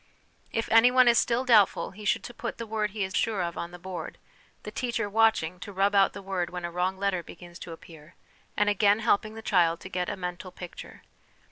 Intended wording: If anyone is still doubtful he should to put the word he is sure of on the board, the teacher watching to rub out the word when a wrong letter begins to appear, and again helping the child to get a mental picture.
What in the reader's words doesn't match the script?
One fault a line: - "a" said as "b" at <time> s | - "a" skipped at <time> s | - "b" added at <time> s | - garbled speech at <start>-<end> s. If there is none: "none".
none